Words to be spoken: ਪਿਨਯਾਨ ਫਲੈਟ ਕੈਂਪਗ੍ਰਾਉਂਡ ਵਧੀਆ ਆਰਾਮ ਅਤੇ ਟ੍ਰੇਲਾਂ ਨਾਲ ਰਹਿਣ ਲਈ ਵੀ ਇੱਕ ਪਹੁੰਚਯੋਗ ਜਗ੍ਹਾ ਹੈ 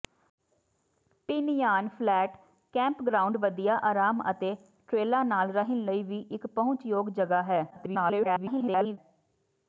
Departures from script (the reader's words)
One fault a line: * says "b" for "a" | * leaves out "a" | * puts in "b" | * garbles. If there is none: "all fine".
* garbles